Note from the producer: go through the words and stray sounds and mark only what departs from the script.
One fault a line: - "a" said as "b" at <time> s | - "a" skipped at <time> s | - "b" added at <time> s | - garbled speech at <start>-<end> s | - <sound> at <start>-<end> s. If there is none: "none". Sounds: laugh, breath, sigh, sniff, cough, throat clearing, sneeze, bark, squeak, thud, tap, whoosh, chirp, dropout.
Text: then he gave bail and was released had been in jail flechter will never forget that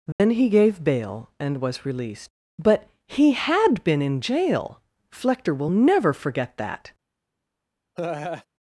- dropout at 0.1-0.2 s
- "but he" added at 2.6 s
- laugh at 8.0-8.5 s